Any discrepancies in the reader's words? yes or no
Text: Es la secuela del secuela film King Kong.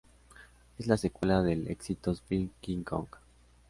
yes